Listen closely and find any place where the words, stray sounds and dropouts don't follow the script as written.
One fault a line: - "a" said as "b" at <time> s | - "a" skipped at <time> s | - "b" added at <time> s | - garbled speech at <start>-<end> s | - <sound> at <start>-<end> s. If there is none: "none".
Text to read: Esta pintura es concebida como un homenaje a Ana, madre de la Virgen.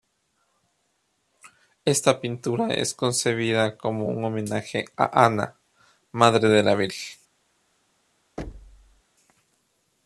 - thud at 8.4-9.0 s